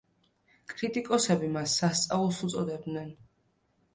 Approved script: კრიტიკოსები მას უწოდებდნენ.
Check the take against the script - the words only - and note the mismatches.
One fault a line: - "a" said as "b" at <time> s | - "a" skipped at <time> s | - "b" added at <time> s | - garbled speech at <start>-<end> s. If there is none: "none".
- "სასწაულს" added at 1.8 s